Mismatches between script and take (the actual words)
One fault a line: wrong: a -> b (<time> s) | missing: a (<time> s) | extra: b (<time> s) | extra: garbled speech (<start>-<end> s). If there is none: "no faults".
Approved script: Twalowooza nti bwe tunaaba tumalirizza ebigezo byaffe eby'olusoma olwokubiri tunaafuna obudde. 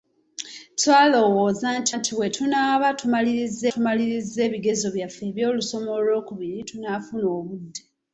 extra: nti (2.0 s)
extra: tumalirizza (3.7 s)